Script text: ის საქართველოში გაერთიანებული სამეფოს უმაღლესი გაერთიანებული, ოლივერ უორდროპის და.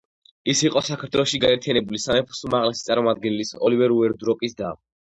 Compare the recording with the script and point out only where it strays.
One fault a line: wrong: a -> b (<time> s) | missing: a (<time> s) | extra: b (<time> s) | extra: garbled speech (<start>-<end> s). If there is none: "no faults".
extra: იყო (0.7 s)
wrong: გაერთიანებული -> წარმომადგენლის (2.9 s)